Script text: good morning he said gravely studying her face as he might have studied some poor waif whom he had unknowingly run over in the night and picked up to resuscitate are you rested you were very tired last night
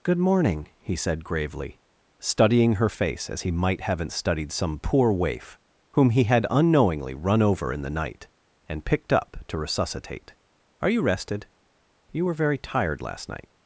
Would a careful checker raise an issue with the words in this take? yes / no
yes